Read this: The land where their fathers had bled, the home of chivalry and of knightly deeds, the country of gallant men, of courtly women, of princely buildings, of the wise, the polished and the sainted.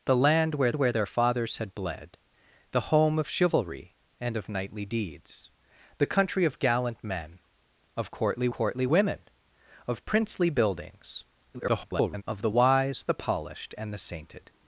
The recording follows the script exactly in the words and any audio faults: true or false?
false